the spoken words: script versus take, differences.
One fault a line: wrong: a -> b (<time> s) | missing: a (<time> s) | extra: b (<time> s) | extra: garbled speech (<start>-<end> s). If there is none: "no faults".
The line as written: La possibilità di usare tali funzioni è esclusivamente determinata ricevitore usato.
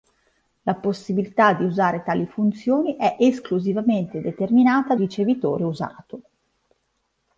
no faults